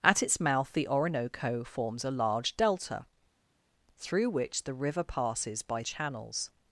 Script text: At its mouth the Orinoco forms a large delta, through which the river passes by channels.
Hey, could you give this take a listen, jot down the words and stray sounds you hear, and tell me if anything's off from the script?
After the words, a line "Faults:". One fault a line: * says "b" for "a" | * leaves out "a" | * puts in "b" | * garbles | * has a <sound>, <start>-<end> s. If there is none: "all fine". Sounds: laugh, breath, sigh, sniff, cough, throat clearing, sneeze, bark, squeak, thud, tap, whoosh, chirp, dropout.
At its mouth the Orinoco forms a large delta, through which the river passes by channels.
Faults:
all fine